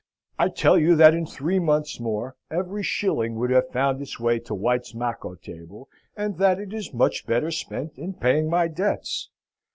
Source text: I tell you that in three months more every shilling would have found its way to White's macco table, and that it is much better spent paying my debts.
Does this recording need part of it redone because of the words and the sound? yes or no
yes